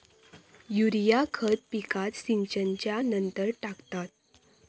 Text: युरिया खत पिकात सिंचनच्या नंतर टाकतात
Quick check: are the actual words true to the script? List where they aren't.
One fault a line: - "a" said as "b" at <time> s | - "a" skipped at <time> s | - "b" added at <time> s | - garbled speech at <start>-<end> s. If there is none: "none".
none